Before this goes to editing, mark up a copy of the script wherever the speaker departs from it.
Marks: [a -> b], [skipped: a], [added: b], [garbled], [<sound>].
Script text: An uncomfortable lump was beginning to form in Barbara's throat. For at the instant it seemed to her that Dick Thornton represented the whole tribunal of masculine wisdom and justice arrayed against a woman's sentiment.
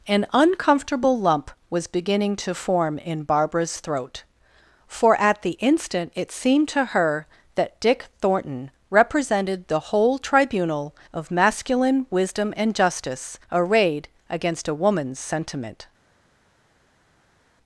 An uncomfortable lump was beginning to form in Barbara's throat. For at the instant it seemed to her that Dick Thornton represented the whole tribunal of masculine wisdom and justice arrayed against a woman's sentiment.